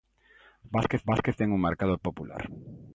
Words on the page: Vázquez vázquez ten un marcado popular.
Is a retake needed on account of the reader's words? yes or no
no